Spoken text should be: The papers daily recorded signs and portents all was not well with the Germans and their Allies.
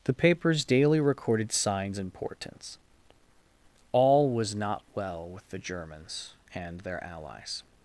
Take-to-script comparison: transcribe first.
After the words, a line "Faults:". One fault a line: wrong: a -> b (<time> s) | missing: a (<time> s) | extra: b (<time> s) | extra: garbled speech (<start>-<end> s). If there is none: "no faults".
The papers daily recorded signs and portents all was not well with the Germans and their Allies.
Faults:
no faults